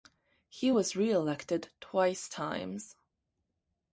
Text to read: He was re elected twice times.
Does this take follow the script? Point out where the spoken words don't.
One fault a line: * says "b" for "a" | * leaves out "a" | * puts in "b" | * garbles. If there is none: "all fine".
all fine